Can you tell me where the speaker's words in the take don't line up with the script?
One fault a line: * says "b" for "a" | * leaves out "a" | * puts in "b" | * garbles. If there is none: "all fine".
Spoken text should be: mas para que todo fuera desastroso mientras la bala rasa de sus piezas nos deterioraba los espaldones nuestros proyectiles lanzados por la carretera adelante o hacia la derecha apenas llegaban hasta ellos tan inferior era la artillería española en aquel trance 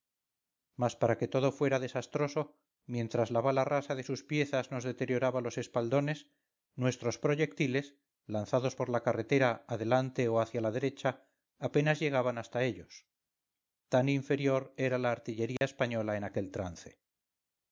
all fine